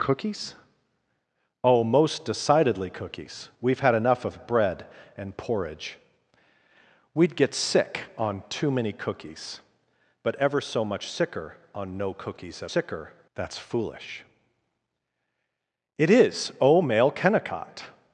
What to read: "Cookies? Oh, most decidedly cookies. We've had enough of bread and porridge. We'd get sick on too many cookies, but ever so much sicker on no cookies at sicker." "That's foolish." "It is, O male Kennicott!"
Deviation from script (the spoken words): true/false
false